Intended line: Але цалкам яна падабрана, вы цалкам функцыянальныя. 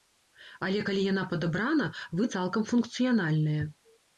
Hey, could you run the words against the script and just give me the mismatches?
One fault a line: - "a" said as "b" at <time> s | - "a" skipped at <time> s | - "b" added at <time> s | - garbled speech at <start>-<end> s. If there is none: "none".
- "цалкам" said as "калі" at 0.9 s